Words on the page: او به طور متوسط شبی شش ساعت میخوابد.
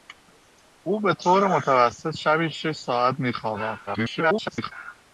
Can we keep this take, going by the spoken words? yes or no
no